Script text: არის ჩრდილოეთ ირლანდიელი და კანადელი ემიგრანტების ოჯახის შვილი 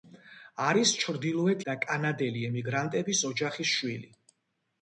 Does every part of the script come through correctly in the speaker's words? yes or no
no